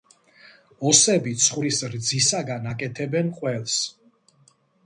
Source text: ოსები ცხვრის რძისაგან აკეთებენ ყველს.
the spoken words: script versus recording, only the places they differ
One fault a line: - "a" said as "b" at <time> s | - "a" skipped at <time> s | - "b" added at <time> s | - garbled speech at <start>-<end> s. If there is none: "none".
none